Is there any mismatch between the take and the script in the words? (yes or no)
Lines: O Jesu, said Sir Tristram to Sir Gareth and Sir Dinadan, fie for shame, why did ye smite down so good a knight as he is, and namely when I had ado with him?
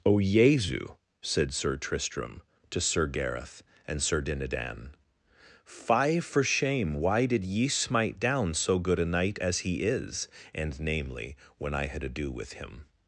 no